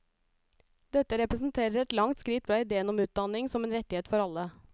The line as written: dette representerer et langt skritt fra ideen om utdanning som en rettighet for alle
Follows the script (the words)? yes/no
yes